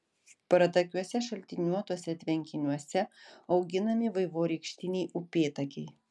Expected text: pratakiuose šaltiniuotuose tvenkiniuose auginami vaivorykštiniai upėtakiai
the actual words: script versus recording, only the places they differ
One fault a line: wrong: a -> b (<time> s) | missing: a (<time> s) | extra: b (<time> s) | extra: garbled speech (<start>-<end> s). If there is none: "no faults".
no faults